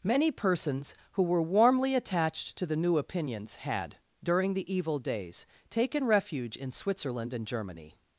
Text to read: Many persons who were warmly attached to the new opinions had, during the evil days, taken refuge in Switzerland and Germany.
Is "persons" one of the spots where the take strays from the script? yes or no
no